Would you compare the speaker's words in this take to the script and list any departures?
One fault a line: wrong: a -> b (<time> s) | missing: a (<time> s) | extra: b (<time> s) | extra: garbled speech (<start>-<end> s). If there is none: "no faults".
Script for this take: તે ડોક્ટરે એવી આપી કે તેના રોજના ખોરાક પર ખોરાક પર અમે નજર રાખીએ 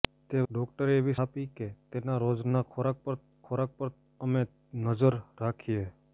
no faults